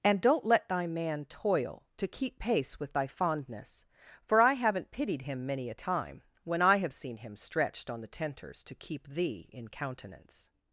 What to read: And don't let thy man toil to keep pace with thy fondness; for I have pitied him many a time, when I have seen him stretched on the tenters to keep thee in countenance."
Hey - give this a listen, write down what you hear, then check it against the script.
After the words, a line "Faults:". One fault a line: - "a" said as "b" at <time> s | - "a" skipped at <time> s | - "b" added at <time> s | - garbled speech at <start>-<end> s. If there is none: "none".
And don't let thy man toil to keep pace with thy fondness; for I haven't pitied him many a time, when I have seen him stretched on the tenters to keep thee in countenance."
Faults:
- "have" said as "haven't" at 4.5 s